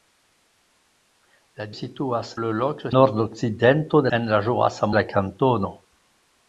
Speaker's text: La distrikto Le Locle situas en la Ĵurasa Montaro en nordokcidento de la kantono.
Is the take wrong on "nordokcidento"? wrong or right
wrong